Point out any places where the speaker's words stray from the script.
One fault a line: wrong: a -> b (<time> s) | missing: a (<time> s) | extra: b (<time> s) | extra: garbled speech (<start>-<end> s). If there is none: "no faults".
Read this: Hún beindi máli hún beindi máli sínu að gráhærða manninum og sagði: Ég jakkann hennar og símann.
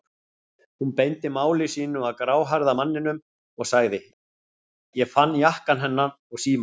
missing: hún beindi máli (1.7 s)
extra: fann (5.2 s)